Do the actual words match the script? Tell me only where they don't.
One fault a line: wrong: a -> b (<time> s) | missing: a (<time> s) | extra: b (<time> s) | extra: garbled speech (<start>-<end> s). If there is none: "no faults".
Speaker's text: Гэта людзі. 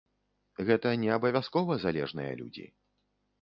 extra: не абавязкова залежныя (1.0 s)